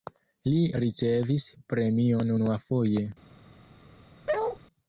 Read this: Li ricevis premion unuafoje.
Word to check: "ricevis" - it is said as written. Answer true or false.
true